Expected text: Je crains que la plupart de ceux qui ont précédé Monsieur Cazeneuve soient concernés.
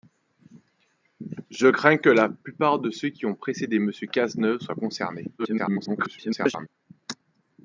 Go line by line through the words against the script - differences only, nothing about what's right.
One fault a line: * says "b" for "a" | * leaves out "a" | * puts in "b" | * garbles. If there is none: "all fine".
* garbles